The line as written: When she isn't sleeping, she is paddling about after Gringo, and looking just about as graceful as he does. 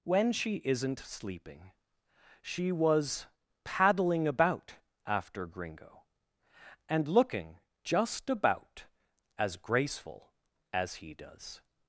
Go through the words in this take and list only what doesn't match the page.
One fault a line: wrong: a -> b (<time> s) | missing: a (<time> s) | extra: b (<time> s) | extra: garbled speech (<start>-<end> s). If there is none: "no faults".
wrong: is -> was (2.7 s)